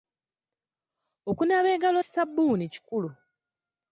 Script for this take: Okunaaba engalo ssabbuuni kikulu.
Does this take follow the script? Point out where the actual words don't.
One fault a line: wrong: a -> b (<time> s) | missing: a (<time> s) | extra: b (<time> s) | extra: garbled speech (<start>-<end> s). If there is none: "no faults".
no faults